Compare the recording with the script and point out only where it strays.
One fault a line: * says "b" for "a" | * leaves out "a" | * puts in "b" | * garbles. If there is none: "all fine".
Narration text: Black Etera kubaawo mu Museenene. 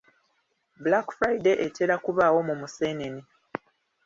* puts in "Friday"